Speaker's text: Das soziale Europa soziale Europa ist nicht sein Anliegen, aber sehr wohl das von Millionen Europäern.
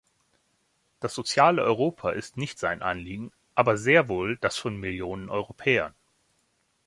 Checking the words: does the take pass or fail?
fail